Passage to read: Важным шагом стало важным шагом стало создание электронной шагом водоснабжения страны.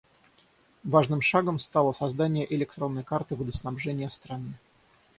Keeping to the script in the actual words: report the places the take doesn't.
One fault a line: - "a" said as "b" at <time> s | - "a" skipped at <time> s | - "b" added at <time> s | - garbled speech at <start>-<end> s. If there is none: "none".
- "важным шагом стало" skipped at 1.9 s
- "шагом" said as "карты" at 3.0 s